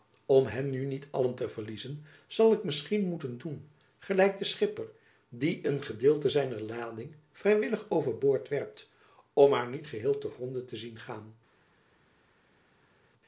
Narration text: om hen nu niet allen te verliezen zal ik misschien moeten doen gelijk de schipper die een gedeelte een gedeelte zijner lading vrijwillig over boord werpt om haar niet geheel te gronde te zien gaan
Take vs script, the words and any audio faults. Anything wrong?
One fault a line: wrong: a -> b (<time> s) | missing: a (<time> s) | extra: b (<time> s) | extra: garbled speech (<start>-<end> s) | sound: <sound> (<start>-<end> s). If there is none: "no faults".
missing: een gedeelte (6.3 s)